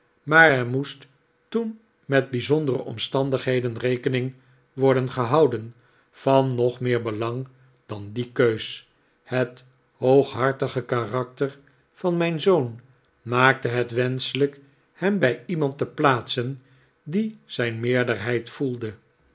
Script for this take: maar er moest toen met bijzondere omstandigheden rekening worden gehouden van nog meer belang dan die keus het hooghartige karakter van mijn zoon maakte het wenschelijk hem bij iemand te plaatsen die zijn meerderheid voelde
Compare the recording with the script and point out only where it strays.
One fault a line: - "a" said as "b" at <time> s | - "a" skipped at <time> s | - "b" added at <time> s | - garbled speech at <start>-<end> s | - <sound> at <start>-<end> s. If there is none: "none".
none